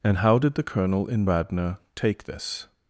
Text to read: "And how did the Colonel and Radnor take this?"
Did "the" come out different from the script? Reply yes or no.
no